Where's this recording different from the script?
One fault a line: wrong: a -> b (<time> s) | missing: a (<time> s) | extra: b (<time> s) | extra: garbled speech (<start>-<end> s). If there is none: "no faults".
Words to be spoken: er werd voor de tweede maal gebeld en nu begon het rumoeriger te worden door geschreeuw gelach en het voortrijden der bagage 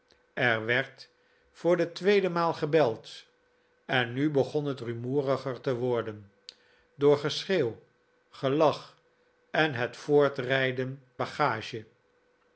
missing: der (11.0 s)